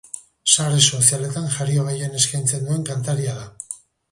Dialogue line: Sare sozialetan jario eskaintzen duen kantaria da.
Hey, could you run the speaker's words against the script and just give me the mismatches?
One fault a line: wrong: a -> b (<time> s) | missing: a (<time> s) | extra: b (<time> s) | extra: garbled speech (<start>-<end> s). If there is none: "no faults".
extra: gehien (1.9 s)